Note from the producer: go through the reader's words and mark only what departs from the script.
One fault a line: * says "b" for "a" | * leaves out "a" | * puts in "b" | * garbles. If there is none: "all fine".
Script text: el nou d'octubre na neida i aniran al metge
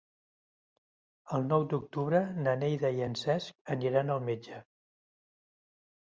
* puts in "en cesc"